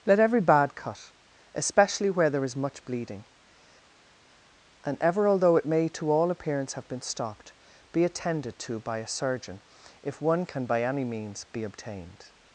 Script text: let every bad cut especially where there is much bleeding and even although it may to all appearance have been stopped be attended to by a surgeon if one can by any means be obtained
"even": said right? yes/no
no